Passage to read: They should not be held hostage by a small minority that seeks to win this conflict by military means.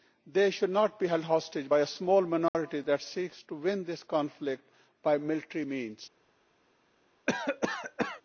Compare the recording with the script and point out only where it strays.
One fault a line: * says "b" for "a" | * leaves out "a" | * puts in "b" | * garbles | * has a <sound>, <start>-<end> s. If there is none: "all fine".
* has a dropout, 2.5-2.5 s
* has a cough, 7.3-8.2 s